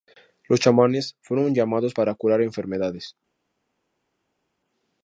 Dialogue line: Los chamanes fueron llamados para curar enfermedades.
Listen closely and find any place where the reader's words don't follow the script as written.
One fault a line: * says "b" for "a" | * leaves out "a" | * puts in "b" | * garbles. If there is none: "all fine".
all fine